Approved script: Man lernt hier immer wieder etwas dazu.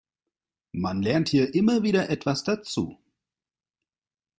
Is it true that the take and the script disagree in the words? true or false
false